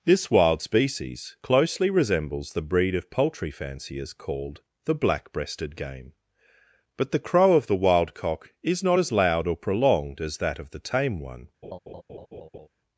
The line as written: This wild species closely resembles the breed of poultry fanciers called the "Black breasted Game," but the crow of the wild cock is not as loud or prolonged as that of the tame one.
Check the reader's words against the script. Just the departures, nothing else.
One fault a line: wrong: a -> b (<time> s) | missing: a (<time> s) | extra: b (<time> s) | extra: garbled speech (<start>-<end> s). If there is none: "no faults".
no faults